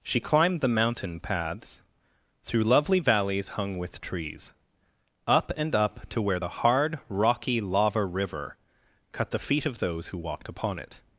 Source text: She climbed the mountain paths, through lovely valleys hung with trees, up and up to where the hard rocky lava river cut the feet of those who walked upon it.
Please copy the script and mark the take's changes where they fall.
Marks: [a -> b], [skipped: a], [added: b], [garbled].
She climbed the mountain paths, through lovely valleys hung with trees, up and up to where the hard rocky lava river cut the feet of those who walked upon it.